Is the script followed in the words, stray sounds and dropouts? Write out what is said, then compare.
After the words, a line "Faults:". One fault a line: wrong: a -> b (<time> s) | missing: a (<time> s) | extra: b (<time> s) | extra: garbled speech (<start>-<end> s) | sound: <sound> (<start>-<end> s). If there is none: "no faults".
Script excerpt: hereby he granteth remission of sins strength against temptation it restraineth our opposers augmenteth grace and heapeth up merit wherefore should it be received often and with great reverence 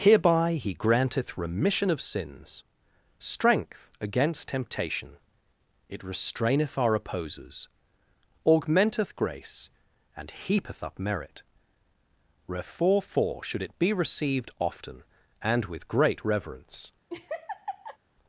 hereby he granteth remission of sins strength against temptation it restraineth our opposers augmenteth grace and heapeth up merit wherefore for should it be received often and with great reverence
Faults:
extra: for (13.0 s)
sound: laugh (17.1-18.0 s)